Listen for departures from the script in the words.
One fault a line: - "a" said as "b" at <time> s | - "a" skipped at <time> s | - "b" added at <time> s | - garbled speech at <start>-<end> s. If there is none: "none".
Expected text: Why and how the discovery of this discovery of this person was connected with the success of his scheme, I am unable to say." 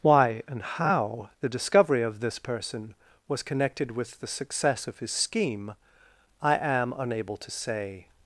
- "discovery of this" skipped at 2.4 s